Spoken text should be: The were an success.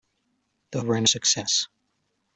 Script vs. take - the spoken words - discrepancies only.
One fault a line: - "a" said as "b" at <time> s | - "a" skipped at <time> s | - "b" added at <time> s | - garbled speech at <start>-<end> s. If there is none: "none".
none